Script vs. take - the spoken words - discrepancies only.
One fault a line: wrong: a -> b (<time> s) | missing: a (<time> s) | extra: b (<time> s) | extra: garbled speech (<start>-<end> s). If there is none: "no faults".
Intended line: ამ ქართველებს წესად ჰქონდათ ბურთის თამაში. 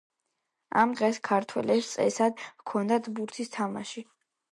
extra: დღეს (1.0 s)